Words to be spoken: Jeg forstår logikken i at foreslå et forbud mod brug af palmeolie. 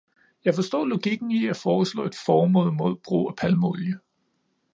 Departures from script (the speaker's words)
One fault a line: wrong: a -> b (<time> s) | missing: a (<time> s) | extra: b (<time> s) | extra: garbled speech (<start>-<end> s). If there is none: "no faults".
no faults